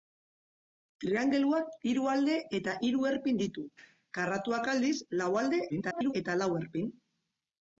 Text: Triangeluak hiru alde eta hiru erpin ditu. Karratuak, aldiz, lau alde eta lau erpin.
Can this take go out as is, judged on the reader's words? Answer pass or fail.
fail